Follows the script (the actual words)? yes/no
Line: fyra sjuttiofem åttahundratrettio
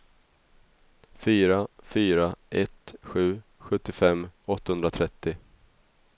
no